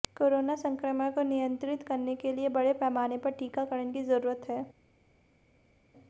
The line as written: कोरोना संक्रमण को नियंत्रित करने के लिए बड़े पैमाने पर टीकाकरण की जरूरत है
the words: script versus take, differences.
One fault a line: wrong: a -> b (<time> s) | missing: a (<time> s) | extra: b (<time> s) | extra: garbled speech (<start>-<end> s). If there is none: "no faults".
no faults